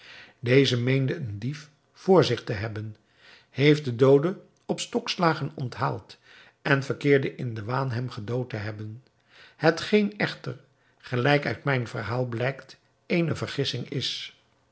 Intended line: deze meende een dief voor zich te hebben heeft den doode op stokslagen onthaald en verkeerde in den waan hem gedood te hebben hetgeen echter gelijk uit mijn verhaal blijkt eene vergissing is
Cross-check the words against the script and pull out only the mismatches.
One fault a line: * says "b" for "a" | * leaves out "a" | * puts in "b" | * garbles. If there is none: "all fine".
all fine